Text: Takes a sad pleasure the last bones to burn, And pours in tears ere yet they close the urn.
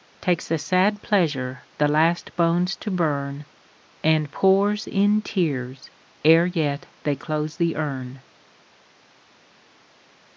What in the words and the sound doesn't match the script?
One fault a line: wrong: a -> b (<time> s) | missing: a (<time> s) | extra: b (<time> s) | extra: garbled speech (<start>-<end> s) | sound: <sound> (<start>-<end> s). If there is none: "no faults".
no faults